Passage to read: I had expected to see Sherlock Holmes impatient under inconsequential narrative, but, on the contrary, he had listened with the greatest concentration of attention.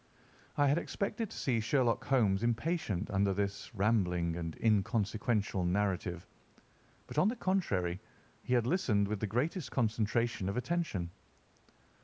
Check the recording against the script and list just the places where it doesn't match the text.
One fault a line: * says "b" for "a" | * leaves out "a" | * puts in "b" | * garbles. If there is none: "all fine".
* puts in "this rambling and"